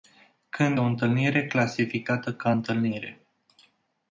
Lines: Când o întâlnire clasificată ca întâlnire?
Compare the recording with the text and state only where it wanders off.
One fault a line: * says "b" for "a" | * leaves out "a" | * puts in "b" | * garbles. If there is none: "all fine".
all fine